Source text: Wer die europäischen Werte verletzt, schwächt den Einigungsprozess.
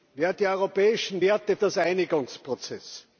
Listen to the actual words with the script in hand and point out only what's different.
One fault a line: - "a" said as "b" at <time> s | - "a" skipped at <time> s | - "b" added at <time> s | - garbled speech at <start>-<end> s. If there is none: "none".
- "verletzt schwächt" skipped at 1.6 s